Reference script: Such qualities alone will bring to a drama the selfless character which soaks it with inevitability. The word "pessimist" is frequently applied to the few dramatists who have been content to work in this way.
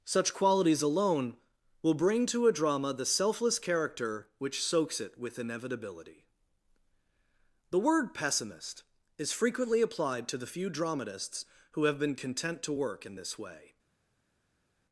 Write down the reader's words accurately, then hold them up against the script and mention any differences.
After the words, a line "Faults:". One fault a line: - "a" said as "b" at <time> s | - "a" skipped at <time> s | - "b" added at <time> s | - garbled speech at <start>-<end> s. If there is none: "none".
Such qualities alone will bring to a drama the selfless character which soaks it with inevitability. The word "pessimist" is frequently applied to the few dramatists who have been content to work in this way.
Faults:
none